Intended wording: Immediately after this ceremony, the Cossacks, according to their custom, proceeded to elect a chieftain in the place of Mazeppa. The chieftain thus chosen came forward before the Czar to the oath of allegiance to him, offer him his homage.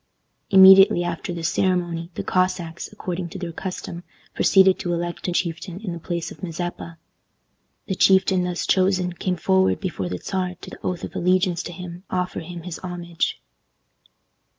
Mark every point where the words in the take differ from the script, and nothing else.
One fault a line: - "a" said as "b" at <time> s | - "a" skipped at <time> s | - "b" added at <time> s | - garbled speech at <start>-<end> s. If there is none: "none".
none